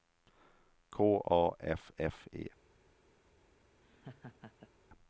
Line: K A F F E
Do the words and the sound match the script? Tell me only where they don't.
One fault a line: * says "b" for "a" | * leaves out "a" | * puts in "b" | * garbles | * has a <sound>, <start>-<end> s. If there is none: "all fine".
* has a laugh, 3.8-4.7 s